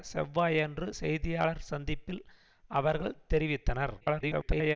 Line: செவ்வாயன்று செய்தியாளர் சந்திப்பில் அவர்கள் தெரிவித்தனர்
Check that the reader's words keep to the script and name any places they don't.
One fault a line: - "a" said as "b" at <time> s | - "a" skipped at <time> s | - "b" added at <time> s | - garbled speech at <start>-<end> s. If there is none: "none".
- garbled speech at 4.0-4.8 s